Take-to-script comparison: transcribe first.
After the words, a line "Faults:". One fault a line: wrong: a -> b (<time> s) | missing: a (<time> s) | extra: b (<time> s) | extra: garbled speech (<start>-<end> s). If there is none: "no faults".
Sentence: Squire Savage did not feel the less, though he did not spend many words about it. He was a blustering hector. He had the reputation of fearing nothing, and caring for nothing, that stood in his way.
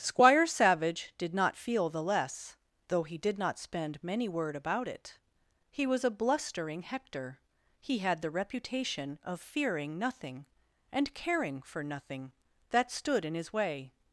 Squire Savage did not feel the less, though he did not spend many word about it. He was a blustering hector. He had the reputation of fearing nothing, and caring for nothing, that stood in his way.
Faults:
wrong: words -> word (4.3 s)